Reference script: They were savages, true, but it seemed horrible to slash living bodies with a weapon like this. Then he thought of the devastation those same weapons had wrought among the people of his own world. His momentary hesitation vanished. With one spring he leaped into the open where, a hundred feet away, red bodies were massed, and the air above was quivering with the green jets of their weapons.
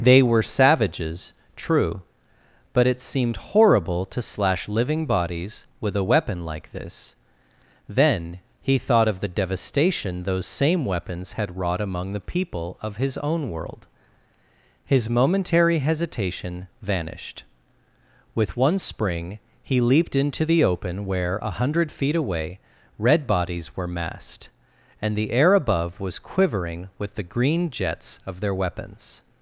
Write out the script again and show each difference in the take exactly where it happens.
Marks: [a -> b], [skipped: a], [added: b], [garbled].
They were savages, true, but it seemed horrible to slash living bodies with a weapon like this. Then he thought of the devastation those same weapons had wrought among the people of his own world. His momentary hesitation vanished. With one spring he leaped into the open where, a hundred feet away, red bodies were massed, and the air above was quivering with the green jets of their weapons.